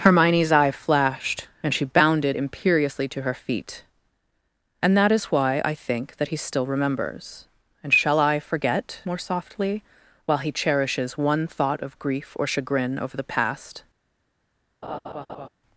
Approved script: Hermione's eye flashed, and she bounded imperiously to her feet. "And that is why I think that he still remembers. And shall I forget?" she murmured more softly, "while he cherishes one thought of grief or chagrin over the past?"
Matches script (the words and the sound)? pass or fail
fail